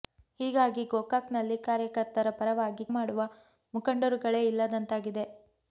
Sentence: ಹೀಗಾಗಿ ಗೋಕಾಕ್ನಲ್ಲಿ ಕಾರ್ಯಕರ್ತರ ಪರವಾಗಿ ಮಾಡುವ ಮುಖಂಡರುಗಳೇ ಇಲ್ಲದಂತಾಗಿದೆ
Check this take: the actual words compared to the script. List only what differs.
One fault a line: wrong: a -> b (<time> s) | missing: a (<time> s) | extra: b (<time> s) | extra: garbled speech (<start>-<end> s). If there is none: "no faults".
no faults